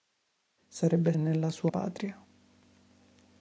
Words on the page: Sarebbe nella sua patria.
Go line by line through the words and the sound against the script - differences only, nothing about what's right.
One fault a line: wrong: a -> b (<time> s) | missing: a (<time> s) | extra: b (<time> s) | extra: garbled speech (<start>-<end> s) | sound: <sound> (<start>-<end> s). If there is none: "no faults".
no faults